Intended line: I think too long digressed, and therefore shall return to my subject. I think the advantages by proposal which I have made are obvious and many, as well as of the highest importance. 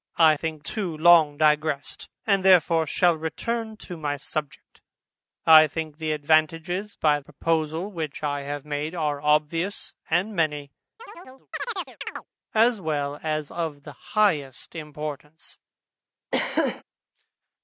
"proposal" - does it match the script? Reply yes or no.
yes